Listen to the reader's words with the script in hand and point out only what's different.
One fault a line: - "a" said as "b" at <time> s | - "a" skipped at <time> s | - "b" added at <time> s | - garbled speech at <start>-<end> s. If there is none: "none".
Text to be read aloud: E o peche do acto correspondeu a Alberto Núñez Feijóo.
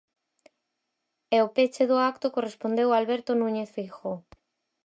none